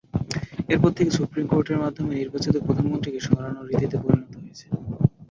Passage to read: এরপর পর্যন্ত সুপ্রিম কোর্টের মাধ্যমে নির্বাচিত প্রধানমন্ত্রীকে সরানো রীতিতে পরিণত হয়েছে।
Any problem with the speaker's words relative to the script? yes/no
yes